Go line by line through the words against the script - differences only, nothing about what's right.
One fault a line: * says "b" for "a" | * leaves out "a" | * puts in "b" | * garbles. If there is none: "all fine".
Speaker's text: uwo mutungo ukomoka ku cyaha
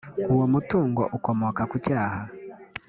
all fine